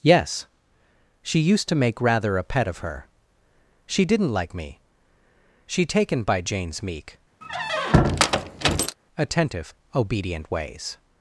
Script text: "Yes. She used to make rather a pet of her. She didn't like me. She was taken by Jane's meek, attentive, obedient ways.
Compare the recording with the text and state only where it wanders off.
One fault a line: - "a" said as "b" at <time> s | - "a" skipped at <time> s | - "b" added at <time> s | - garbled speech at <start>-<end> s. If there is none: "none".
- "was" skipped at 5.8 s